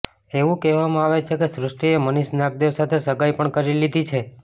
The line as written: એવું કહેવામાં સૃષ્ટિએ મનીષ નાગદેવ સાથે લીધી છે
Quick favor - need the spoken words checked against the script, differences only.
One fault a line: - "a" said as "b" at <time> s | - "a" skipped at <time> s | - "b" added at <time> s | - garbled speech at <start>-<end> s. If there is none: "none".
- "આવે છે કે" added at 1.0 s
- "સગાઈ પણ કરી" added at 3.1 s